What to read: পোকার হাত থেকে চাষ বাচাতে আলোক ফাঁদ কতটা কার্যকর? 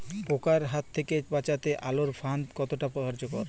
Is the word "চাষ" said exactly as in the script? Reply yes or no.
no